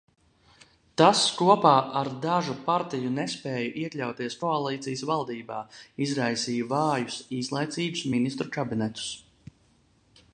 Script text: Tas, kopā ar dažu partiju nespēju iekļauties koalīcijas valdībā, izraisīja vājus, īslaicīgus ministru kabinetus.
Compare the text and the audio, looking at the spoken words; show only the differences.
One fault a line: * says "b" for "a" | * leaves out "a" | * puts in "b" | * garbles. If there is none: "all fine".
all fine